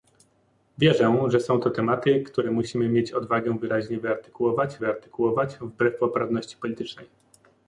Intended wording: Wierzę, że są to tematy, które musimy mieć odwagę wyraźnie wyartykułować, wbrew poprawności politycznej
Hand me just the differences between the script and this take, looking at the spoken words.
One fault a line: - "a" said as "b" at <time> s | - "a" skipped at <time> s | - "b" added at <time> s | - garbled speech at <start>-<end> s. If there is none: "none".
- "wyartykułować" added at 4.8 s